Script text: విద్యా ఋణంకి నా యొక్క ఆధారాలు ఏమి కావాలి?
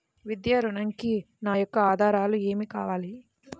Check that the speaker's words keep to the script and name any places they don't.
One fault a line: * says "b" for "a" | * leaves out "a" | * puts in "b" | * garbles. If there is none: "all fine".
all fine